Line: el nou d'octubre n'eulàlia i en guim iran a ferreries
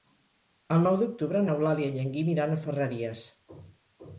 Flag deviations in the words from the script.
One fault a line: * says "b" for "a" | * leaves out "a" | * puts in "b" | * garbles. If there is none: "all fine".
all fine